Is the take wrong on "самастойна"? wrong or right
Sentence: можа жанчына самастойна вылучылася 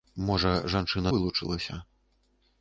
wrong